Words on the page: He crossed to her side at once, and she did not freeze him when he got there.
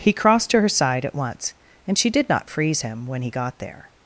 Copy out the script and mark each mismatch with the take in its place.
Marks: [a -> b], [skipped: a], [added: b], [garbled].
He crossed to her side at once, and she did not freeze him when he got there.